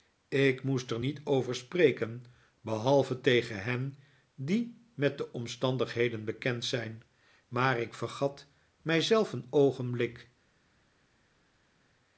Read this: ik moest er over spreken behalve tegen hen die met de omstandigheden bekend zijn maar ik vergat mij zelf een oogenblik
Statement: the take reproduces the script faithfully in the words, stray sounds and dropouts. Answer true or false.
false